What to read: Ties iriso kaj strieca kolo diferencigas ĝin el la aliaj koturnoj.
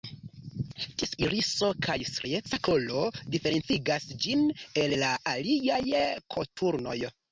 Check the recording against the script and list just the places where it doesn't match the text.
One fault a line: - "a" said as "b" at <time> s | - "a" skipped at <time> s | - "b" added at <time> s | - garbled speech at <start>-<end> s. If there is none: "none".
none